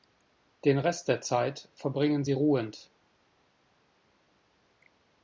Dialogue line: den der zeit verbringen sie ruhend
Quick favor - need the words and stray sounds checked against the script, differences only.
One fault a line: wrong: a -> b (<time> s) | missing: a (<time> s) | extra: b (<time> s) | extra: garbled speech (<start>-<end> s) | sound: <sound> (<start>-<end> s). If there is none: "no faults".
extra: rest (0.8 s)